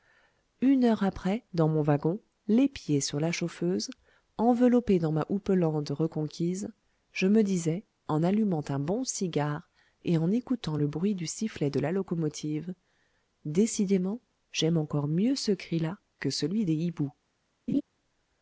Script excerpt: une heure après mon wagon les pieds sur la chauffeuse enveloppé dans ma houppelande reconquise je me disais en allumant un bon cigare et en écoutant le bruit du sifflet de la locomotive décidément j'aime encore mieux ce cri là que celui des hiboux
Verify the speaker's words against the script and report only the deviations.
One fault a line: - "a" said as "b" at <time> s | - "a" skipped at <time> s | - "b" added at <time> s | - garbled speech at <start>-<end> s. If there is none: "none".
- "dans" added at 1.5 s